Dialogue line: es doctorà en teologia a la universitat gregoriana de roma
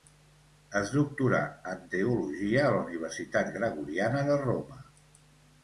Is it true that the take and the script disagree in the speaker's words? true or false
false